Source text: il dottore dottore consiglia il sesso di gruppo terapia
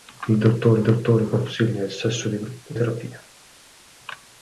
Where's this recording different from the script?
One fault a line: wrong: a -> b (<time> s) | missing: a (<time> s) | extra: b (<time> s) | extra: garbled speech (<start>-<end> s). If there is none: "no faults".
no faults